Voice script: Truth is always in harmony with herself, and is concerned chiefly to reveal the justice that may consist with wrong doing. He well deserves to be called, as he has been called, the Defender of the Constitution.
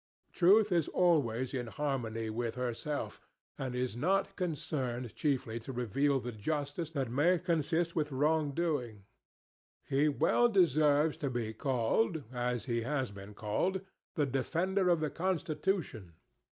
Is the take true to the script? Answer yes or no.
no